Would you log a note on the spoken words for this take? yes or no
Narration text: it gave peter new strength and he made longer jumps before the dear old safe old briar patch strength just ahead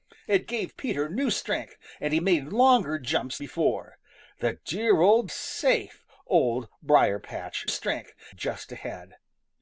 no